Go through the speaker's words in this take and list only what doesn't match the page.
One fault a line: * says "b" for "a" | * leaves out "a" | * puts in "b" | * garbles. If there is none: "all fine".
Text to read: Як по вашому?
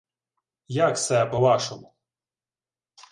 * puts in "се"